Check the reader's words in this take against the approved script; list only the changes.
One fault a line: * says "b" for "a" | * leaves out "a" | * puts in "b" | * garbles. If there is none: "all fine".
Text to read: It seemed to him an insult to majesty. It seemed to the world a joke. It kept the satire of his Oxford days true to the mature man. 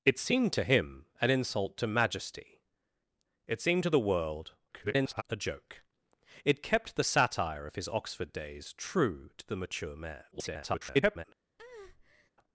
* garbles
* garbles